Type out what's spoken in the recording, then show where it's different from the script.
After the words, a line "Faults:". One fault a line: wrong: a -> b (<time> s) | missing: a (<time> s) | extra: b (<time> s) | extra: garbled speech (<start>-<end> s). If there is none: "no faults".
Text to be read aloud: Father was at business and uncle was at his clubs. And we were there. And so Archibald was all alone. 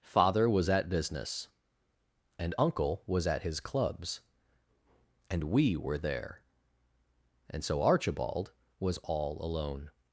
Father was at business and uncle was at his clubs. And we were there. And so Archibald was all alone.
Faults:
no faults